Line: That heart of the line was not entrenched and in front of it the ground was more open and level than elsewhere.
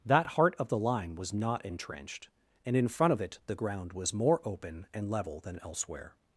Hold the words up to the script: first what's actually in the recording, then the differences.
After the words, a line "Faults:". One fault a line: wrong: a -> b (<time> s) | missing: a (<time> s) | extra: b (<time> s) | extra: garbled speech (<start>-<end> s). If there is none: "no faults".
That heart of the line was not entrenched and in front of it the ground was more open and level than elsewhere.
Faults:
no faults